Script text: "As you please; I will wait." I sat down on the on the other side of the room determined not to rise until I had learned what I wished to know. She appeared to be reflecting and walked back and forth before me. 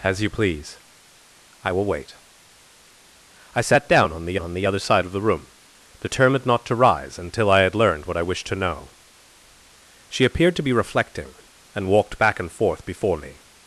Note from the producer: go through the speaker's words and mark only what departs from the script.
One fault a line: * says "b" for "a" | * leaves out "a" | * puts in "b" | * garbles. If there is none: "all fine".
all fine